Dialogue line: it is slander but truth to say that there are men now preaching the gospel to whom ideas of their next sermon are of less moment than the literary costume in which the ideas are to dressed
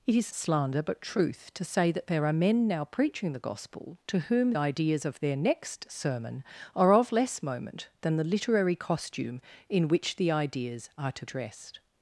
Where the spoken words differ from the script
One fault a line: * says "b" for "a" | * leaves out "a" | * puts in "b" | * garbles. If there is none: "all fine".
all fine